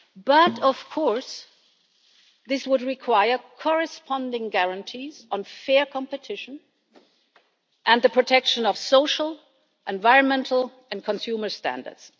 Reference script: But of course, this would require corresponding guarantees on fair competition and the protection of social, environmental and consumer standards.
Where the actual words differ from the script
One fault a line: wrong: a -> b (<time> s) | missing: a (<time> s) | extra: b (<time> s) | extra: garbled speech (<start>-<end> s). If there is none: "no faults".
no faults